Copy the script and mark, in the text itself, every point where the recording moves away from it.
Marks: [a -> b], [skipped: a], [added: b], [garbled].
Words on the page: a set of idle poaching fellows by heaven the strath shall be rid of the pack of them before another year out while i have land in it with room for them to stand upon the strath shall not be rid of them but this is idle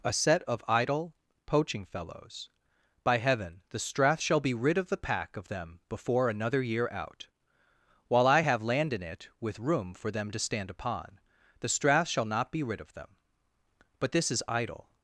a set of idle poaching fellows by heaven the strath shall be rid of the pack of them before another year out while i have land in it with room for them to stand upon the strath shall not be rid of them but this is idle